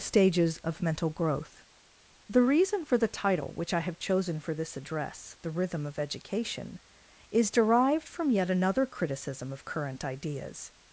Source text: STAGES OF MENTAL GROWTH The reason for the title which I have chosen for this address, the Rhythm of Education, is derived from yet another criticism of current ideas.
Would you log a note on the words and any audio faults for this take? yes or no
no